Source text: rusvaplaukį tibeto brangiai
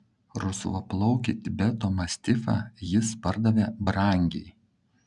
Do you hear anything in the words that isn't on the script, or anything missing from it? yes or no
yes